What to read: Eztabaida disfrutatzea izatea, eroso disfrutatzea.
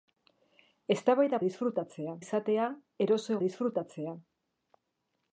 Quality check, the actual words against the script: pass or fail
pass